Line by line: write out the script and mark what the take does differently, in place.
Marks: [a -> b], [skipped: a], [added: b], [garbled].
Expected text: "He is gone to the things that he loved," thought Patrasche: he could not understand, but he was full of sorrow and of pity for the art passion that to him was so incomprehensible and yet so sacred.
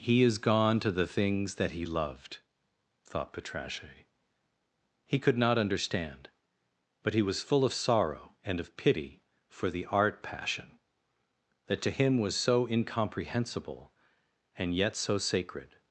"He is gone to the things that he loved," thought Patrasche: he could not understand, but he was full of sorrow and of pity for the art passion that to him was so incomprehensible and yet so sacred.